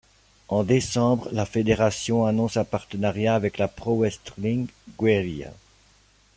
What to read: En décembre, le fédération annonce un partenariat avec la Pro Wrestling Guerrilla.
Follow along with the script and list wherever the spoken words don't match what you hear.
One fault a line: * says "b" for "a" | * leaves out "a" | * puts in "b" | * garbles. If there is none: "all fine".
* says "la" for "le"